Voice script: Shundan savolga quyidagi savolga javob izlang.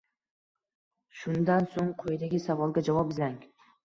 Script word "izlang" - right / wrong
right